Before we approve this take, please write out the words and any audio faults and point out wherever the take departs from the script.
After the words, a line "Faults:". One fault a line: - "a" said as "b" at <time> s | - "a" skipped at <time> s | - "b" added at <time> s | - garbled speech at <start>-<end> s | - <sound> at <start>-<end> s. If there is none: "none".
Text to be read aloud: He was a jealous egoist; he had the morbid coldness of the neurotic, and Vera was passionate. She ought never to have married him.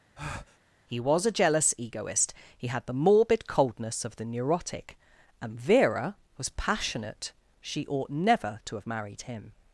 He was a jealous egoist; he had the morbid coldness of the neurotic, and Vera was passionate. She ought never to have married him.
Faults:
- breath at 0.2-0.6 s